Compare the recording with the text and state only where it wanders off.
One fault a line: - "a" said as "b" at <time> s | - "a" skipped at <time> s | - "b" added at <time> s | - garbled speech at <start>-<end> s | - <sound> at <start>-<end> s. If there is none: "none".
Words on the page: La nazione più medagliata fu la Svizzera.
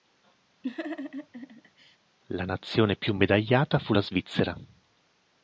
- laugh at 0.6-2.0 s